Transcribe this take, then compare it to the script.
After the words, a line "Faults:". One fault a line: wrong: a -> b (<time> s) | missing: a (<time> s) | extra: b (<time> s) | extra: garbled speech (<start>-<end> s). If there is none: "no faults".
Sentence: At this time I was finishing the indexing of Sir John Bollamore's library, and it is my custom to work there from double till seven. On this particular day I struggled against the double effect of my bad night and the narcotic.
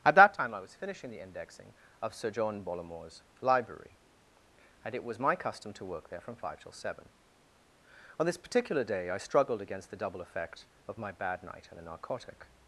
At that time I was finishing the indexing of Sir John Bollamore's library, and it was my custom to work there from five till seven. On this particular day I struggled against the double effect of my bad night and the narcotic.
Faults:
wrong: this -> that (0.1 s)
wrong: is -> was (5.0 s)
wrong: double -> five (6.3 s)